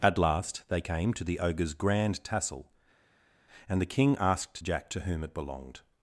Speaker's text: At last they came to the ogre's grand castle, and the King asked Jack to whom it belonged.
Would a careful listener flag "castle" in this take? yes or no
yes